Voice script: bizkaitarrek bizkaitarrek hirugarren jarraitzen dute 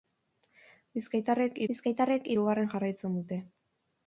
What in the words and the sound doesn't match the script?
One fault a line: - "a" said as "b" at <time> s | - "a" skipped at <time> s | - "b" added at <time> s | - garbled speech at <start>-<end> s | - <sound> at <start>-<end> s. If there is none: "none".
none